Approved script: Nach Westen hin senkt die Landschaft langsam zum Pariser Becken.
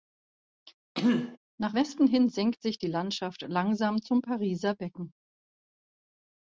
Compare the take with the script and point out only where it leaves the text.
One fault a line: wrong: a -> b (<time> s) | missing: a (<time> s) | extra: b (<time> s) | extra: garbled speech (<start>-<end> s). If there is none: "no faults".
extra: sich (2.6 s)